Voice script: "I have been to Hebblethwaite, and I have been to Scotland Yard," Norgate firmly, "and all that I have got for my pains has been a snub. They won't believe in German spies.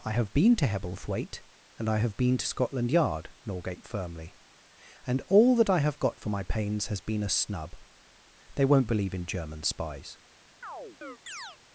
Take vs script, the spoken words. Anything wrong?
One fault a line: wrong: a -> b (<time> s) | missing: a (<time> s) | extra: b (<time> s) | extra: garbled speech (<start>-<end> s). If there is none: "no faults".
no faults